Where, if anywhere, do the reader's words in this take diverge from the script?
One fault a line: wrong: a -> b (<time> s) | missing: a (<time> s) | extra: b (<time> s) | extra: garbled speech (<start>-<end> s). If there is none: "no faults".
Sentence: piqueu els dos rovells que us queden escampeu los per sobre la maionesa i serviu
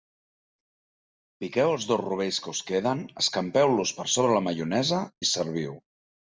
no faults